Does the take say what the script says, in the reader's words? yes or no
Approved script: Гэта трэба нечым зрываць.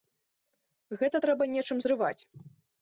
yes